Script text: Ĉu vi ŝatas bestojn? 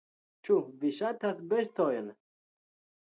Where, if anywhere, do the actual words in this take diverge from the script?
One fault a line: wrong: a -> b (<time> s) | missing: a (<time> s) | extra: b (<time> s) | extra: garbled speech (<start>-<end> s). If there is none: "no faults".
no faults